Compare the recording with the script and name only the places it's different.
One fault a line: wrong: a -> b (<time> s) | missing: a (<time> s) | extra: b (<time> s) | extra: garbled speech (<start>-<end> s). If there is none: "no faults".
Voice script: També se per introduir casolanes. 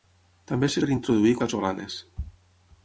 no faults